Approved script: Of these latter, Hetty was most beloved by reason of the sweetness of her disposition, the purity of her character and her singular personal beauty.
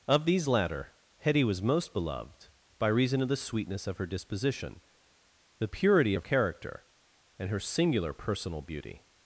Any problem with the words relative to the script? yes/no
yes